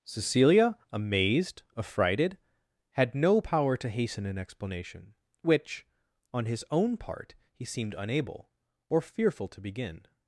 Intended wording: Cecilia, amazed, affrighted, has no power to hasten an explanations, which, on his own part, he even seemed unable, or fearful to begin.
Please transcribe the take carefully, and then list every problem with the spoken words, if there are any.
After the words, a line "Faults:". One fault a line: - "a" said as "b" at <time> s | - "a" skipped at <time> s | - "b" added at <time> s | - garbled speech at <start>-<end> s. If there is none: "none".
Cecilia, amazed, affrighted, had no power to hasten an explanation, which, on his own part, he seemed unable, or fearful to begin.
Faults:
- "has" said as "had" at 2.9 s
- "explanations" said as "explanation" at 4.4 s
- "even" skipped at 7.6 s